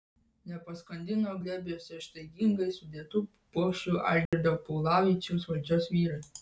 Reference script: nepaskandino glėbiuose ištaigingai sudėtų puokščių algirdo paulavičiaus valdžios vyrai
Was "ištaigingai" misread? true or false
false